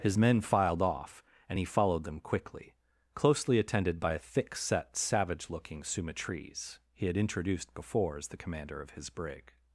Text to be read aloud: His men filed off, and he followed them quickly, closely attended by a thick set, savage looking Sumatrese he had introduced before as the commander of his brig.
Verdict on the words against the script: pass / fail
pass